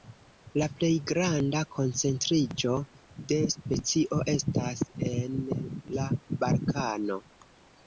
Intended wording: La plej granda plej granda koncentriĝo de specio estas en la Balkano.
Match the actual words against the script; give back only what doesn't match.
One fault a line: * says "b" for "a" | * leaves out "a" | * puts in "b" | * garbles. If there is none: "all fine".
* leaves out "plej granda"